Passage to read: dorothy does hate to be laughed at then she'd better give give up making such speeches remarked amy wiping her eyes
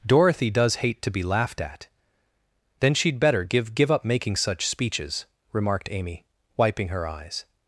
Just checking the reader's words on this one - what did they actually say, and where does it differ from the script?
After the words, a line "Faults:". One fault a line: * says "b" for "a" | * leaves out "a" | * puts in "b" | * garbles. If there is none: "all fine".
dorothy does hate to be laughed at then she'd better give give up making such speeches remarked amy wiping her eyes
Faults:
all fine